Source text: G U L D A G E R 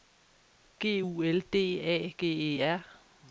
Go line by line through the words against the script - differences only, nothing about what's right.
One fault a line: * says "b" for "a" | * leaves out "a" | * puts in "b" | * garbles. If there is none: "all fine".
all fine